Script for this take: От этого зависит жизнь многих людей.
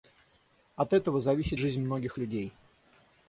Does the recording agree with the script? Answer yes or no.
yes